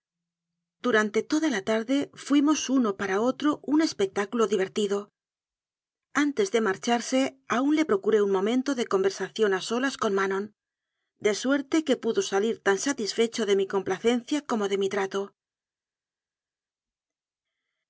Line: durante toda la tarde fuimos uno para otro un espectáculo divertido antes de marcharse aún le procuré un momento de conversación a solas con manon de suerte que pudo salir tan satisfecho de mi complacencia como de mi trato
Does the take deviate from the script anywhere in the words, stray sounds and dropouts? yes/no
no